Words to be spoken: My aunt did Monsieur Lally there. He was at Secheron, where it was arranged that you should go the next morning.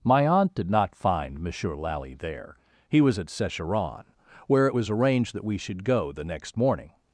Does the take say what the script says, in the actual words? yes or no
no